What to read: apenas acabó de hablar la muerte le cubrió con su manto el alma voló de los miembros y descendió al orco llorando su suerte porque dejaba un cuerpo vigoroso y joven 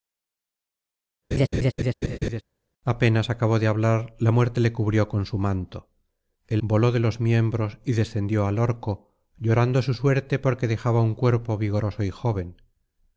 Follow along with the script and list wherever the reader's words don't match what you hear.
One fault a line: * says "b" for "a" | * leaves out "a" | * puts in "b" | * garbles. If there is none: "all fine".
* leaves out "alma"